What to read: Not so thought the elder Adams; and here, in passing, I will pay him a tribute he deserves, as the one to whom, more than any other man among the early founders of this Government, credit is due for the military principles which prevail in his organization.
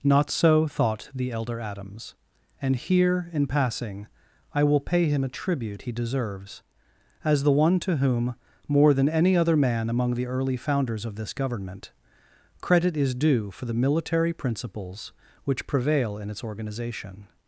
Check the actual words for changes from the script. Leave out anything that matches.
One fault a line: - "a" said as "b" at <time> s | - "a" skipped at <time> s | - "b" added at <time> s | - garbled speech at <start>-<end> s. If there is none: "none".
- "his" said as "its" at 16.3 s